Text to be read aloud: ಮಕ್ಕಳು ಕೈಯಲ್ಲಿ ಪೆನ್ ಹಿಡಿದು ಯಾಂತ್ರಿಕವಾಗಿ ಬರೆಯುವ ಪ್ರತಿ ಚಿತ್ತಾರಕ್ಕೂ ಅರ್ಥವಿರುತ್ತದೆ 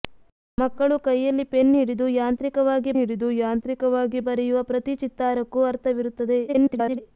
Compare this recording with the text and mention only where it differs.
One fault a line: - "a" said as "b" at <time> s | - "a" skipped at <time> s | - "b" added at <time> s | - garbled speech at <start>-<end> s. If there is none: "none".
- "ಹಿಡಿದು ಯಾಂತ್ರಿಕವಾಗಿ" added at 3.0 s
- garbled speech at 6.5-7.0 s